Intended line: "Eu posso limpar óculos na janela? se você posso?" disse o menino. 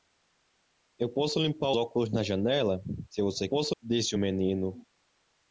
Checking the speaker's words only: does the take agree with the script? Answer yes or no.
yes